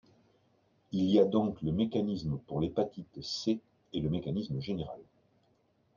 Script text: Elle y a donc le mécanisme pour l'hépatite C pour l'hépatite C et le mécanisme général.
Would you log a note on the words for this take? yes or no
yes